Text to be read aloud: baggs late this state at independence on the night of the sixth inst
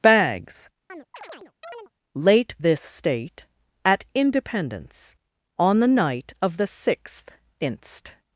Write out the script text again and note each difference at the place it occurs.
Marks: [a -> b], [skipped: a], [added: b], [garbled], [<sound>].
baggs [chirp] late this state at independence on the night of the sixth inst